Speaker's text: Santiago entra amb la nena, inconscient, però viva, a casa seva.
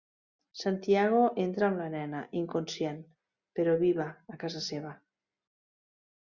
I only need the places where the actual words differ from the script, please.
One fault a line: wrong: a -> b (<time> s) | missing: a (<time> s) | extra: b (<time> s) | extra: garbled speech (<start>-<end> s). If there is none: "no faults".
no faults